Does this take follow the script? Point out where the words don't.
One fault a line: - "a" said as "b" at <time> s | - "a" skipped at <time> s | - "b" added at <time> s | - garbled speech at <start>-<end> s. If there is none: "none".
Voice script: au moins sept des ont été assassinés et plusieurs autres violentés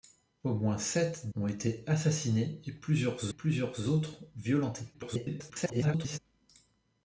- "des" skipped at 1.3 s
- "plusieurs" added at 3.3 s
- garbled speech at 4.9-6.2 s